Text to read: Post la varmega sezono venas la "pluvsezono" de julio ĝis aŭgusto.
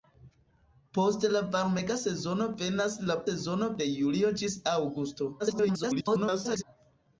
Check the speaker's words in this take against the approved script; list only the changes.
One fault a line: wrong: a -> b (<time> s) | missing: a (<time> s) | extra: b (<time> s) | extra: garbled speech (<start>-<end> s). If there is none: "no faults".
wrong: pluvsezono -> sezono (3.3 s)
extra: garbled speech (5.4-6.6 s)